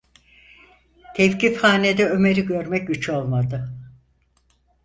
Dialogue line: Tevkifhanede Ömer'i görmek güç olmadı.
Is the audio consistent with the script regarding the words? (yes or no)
yes